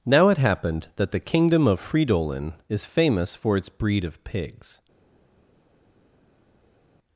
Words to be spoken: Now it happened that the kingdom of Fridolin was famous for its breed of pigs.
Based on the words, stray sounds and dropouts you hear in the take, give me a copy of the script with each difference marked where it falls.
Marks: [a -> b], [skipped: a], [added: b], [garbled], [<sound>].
Now it happened that the kingdom of Fridolin [was -> is] famous for its breed of pigs.